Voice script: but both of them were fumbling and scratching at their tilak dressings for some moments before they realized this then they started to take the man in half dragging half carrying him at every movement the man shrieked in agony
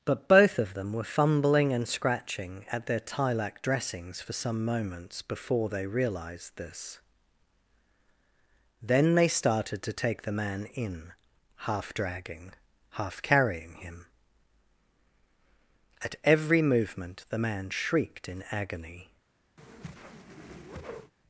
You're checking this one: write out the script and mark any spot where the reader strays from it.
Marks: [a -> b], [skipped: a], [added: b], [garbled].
but both of them were fumbling and scratching at their tilak dressings for some moments before they realized this then they started to take the man in half dragging half carrying him at every movement the man shrieked in agony